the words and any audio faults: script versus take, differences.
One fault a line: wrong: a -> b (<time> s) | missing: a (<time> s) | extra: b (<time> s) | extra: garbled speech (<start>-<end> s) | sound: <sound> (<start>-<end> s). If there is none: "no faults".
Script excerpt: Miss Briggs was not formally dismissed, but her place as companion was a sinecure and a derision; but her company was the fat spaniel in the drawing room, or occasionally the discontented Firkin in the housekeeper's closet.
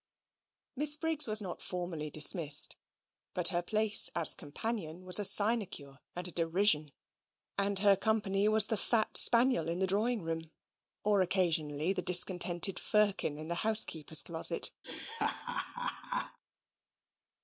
wrong: but -> and (7.6 s)
sound: laugh (14.8-16.4 s)